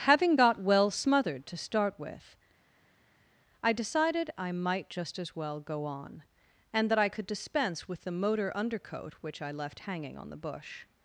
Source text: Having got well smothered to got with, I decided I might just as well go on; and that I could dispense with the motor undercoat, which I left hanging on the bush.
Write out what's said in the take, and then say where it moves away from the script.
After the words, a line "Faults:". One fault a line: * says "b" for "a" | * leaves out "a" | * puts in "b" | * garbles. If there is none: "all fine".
Having got well smothered to start with, I decided I might just as well go on; and that I could dispense with the motor undercoat, which I left hanging on the bush.
Faults:
* says "start" for "got"